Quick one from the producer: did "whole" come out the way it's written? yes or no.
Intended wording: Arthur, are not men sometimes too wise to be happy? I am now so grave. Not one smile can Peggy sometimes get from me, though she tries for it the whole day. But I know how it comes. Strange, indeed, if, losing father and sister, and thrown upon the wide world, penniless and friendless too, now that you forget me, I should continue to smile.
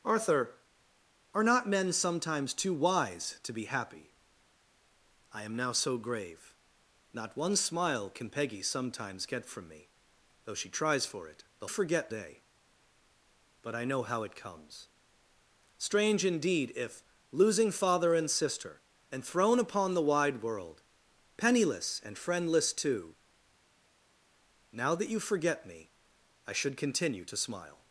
no